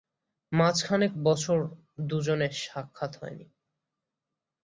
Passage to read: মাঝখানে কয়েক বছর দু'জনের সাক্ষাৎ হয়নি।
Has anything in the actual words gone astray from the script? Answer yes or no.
yes